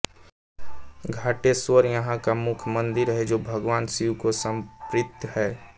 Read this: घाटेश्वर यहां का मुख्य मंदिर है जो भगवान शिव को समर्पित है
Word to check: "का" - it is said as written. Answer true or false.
true